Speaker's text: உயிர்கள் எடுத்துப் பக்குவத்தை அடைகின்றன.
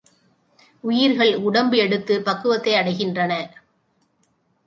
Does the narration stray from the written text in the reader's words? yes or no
yes